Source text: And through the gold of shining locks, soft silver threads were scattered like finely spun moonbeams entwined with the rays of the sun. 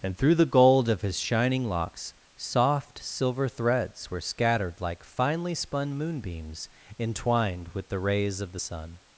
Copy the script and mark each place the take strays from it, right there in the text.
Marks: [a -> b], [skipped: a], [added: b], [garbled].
And through the gold of [added: his] shining locks, soft silver threads were scattered like finely spun moonbeams entwined with the rays of the sun.